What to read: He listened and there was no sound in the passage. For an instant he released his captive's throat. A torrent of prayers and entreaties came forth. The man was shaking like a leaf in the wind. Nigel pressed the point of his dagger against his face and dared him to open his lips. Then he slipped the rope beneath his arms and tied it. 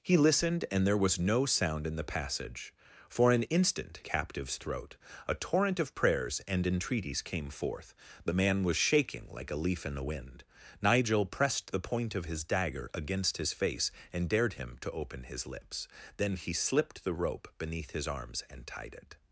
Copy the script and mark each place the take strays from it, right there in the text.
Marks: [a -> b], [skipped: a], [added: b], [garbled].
He listened and there was no sound in the passage. For an instant [skipped: he released his] captive's throat. A torrent of prayers and entreaties came forth. The man was shaking like a leaf in the wind. Nigel pressed the point of his dagger against his face and dared him to open his lips. Then he slipped the rope beneath his arms and tied it.